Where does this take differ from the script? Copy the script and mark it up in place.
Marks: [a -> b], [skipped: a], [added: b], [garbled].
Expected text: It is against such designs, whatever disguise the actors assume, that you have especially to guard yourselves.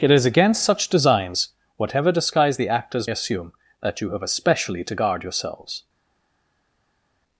It is against such designs, whatever disguise the actors assume, that you have especially to guard yourselves.